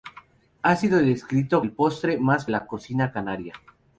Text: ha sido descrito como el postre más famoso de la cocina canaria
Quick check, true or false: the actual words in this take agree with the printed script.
false